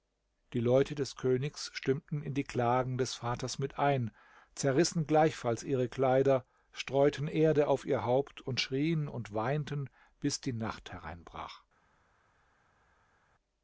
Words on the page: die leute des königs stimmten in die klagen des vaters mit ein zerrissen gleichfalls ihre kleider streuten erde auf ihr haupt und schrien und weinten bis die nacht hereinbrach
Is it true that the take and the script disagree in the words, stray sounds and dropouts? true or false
false